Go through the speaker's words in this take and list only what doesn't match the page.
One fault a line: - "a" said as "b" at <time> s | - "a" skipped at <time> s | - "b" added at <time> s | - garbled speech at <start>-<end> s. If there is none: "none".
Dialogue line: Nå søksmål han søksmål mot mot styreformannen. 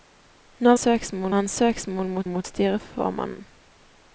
none